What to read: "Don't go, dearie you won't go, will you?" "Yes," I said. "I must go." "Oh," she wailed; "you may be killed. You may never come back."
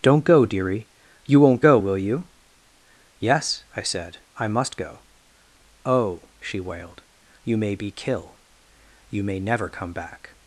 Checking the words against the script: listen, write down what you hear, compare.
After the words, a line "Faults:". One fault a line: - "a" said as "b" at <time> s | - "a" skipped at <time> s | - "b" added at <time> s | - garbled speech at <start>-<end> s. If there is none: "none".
"Don't go, dearie you won't go, will you?" "Yes," I said. "I must go." "Oh," she wailed; "you may be kill. You may never come back."
Faults:
- "killed" said as "kill" at 7.9 s